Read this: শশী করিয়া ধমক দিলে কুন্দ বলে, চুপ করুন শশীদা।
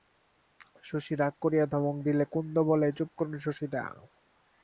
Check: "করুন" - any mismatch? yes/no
no